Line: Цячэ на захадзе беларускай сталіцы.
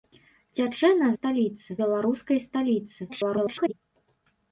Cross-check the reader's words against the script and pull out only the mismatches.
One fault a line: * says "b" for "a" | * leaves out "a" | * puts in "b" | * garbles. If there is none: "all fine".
* says "сталіцы" for "захадзе"
* garbles